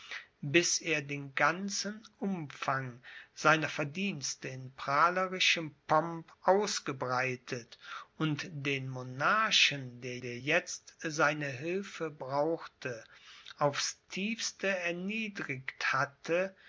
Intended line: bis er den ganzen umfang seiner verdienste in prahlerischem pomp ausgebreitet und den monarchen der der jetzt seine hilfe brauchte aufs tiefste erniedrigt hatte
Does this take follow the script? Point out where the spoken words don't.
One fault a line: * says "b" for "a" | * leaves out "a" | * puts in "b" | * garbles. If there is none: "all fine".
all fine